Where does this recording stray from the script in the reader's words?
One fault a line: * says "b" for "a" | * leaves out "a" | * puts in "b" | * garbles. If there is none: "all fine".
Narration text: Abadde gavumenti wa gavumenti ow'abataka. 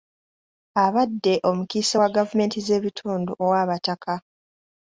* says "omukiise" for "gavumenti"
* puts in "z'ebitundu"